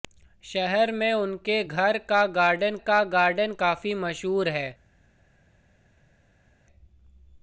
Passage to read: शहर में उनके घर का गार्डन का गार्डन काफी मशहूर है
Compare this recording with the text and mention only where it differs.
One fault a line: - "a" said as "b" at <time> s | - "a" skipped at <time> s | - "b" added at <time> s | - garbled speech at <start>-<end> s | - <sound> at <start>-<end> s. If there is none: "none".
none